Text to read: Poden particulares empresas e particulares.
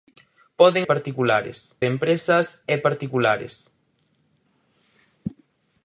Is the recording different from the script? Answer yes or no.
no